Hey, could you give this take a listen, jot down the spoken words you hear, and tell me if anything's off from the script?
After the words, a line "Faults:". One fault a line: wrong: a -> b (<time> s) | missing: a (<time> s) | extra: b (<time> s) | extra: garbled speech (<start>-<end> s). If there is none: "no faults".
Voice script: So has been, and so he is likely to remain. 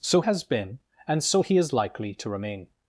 So has been, and so he is likely to remain.
Faults:
no faults